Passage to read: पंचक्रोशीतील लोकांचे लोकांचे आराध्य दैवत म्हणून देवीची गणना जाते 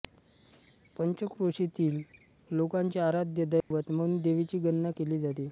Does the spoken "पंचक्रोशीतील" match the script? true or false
true